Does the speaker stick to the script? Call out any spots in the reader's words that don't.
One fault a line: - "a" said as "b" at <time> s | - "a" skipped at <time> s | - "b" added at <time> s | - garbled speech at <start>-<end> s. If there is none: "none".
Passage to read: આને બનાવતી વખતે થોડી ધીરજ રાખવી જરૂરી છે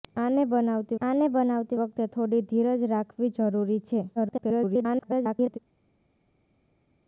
- "આને બનાવતી" added at 1.0 s
- garbled speech at 4.2-5.6 s